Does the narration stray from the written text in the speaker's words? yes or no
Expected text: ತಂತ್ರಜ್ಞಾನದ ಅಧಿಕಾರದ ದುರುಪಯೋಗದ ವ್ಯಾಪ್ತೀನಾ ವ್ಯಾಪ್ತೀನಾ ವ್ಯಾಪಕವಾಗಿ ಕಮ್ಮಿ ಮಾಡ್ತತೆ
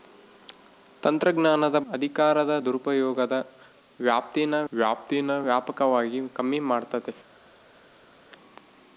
no